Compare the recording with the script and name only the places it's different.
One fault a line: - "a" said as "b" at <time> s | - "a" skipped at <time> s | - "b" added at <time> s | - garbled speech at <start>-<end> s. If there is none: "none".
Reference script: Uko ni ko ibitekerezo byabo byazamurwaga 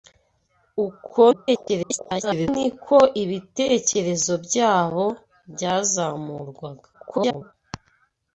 - garbled speech at 1.3-2.5 s
- garbled speech at 6.9-7.5 s